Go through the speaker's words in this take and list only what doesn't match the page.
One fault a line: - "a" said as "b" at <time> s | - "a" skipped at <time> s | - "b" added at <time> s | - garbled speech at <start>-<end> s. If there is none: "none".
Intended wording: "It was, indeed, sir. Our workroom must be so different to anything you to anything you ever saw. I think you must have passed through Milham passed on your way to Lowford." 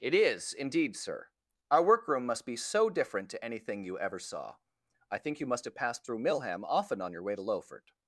- "was" said as "is" at 0.1 s
- "to anything you" skipped at 4.0 s
- "passed" said as "often" at 6.6 s